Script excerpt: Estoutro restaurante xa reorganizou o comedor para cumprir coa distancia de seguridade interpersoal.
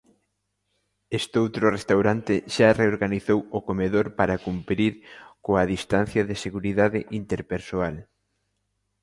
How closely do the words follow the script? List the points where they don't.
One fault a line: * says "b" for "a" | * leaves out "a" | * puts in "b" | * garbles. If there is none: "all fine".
all fine